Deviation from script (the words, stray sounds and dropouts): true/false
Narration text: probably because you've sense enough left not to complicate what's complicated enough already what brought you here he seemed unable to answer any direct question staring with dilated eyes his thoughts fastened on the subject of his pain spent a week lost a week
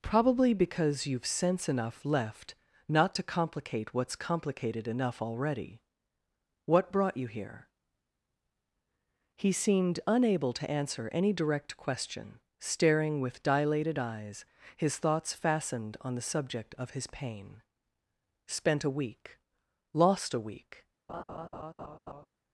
true